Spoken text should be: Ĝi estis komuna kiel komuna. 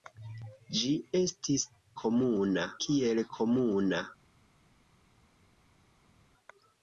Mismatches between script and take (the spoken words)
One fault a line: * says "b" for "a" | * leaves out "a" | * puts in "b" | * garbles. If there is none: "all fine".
all fine